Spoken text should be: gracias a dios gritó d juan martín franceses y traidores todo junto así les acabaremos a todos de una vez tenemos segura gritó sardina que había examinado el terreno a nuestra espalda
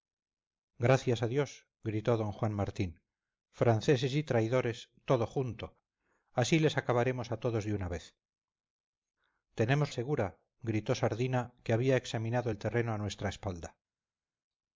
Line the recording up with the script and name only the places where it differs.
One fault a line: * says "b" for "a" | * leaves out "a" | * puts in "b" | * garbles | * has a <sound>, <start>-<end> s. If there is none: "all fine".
all fine